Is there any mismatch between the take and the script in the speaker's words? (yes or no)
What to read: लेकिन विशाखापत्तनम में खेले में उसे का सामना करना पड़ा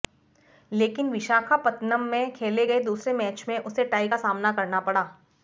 yes